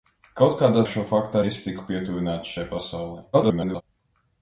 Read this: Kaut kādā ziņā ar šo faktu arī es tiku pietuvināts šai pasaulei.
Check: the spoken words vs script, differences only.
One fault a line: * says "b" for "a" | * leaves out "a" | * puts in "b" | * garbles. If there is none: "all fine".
* leaves out "ziņā"
* leaves out "arī"
* garbles